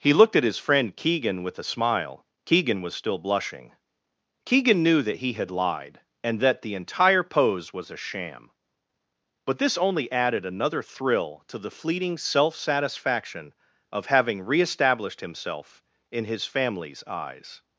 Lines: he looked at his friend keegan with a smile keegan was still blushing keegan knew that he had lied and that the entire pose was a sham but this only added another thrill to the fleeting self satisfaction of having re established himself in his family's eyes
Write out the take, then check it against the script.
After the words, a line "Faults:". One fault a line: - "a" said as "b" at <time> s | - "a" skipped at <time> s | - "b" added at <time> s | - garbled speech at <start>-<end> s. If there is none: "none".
he looked at his friend keegan with a smile keegan was still blushing keegan knew that he had lied and that the entire pose was a sham but this only added another thrill to the fleeting self satisfaction of having re established himself in his family's eyes
Faults:
none